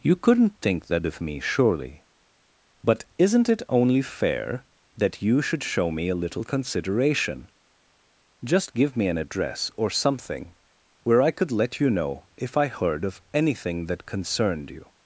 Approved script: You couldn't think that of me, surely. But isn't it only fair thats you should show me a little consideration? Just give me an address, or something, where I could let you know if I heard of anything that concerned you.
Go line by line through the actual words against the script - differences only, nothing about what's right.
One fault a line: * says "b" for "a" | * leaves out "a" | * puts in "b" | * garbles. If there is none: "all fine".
* says "that" for "thats"